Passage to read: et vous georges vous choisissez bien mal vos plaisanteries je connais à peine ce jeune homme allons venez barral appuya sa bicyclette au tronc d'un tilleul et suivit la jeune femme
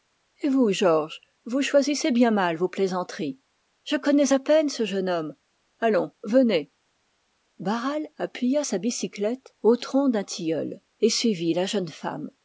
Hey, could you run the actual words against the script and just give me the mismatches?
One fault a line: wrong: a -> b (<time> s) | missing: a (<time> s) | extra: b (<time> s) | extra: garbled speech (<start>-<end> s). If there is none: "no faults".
no faults